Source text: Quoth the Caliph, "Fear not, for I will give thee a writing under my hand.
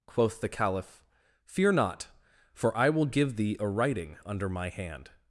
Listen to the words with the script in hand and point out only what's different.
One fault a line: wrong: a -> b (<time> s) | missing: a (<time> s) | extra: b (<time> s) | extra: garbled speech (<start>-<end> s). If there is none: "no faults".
no faults